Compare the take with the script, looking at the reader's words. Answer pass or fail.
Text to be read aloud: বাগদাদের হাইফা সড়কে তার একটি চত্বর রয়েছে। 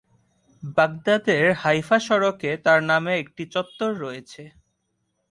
fail